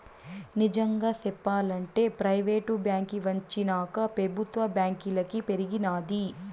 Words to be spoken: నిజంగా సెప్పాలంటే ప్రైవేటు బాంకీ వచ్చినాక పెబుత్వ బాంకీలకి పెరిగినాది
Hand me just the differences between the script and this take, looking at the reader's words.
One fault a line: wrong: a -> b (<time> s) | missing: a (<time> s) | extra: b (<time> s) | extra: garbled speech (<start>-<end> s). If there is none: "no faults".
no faults